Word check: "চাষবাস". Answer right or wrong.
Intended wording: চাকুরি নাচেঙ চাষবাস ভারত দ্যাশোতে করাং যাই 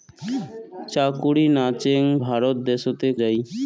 wrong